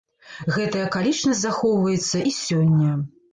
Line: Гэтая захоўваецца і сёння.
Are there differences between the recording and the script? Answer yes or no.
yes